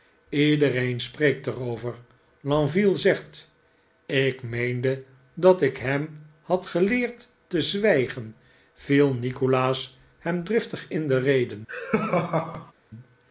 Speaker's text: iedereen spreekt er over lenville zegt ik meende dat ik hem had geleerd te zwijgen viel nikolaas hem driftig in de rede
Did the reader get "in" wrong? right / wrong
right